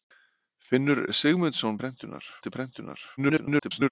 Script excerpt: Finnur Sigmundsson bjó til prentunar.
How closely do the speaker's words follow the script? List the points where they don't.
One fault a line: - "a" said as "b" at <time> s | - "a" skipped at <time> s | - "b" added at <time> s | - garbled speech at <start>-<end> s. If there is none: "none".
- "bjó" said as "prentunar" at 1.8 s
- garbled speech at 3.2-3.9 s